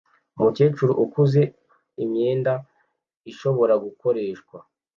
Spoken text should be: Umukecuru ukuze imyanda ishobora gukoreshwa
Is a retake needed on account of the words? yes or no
no